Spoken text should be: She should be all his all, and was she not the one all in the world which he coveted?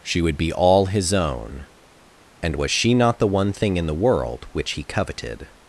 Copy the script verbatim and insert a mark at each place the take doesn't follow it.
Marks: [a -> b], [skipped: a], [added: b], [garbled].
She [should -> would] be all his [all, -> own] and was she not the one [all -> thing] in the world which he coveted?